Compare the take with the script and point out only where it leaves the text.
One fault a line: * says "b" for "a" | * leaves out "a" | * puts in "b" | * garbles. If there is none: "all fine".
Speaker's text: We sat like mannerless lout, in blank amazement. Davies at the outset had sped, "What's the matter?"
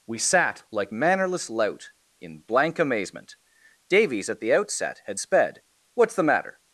all fine